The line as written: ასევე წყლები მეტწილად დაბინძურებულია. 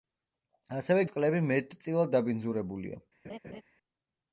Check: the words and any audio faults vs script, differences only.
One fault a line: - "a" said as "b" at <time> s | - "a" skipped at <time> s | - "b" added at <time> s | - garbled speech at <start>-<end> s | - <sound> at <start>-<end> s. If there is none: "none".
- laugh at 3.2-3.6 s